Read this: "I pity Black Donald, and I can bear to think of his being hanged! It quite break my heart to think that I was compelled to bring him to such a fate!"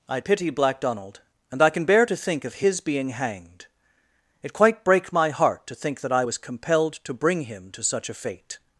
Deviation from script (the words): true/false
false